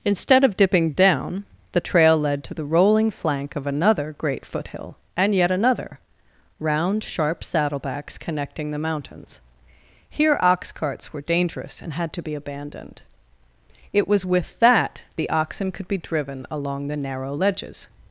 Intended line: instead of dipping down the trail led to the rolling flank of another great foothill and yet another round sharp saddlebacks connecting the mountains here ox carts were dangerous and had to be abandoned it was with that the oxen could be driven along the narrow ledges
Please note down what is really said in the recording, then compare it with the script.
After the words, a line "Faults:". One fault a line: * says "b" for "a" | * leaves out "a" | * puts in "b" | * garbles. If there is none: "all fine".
instead of dipping down the trail led to the rolling flank of another great foothill and yet another round sharp saddlebacks connecting the mountains here ox carts were dangerous and had to be abandoned it was with that the oxen could be driven along the narrow ledges
Faults:
all fine